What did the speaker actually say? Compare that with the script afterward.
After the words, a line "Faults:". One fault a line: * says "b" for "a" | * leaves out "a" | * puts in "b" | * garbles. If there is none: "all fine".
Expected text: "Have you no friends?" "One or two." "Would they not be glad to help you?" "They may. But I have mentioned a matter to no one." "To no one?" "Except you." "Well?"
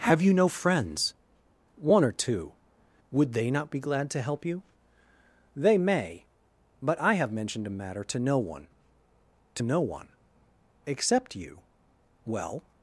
"Have you no friends?" "One or two." "Would they not be glad to help you?" "They may. But I have mentioned a matter to no one." "To no one?" "Except you." "Well?"
Faults:
all fine